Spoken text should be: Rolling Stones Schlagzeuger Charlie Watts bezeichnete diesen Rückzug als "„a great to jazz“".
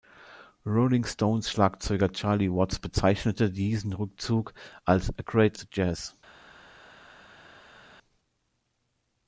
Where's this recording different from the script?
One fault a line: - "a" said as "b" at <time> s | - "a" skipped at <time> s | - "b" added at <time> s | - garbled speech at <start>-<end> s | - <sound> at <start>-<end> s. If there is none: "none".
none